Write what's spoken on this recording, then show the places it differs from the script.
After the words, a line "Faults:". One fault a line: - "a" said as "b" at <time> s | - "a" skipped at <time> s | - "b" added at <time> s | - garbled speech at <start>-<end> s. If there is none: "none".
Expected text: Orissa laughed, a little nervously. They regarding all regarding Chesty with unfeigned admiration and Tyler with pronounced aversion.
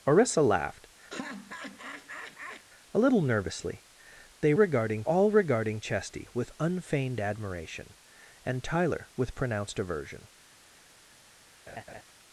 Orissa laughed, a little nervously. They regarding all regarding Chesty with unfeigned admiration and Tyler with pronounced aversion.
Faults:
none